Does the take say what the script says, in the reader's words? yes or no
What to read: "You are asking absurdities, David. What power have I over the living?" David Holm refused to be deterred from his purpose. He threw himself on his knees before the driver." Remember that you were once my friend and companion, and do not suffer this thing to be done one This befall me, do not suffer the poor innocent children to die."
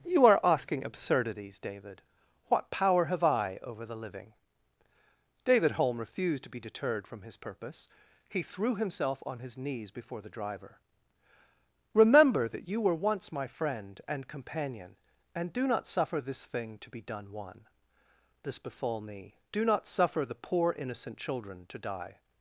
yes